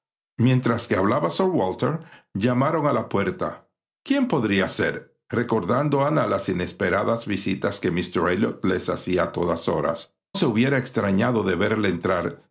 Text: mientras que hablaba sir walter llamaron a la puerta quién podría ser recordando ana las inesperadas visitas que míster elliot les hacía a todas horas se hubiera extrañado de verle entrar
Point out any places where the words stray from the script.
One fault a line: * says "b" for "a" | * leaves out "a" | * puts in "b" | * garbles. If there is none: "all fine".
all fine